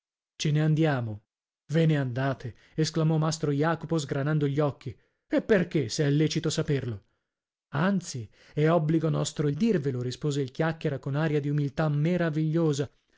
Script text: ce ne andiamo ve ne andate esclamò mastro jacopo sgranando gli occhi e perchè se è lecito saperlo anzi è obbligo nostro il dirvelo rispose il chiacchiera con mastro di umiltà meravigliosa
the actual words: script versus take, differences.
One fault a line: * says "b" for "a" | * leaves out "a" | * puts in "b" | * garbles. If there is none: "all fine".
* says "aria" for "mastro"